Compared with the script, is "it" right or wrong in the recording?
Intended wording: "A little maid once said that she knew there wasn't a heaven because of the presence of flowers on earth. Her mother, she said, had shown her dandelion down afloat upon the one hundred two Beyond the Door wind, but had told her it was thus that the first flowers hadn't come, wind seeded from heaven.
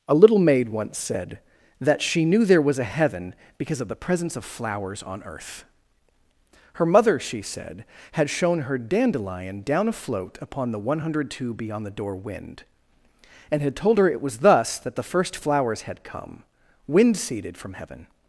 right